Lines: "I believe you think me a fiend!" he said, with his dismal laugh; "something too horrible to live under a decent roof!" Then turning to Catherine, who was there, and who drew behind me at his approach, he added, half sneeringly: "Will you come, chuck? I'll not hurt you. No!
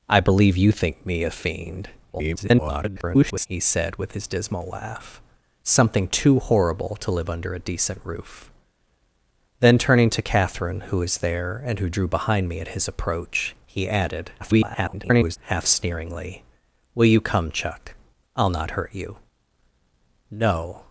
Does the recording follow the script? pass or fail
fail